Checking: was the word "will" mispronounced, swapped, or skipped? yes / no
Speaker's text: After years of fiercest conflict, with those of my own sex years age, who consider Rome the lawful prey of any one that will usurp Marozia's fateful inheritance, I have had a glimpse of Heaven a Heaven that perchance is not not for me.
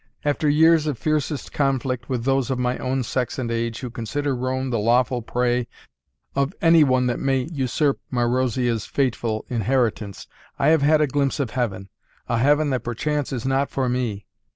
yes